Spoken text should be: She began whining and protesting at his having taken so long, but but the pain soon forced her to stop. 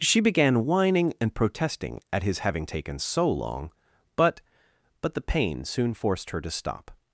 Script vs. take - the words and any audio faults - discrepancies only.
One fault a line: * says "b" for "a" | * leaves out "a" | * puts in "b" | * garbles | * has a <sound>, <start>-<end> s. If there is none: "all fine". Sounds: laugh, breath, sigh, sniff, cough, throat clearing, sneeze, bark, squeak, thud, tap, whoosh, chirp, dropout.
all fine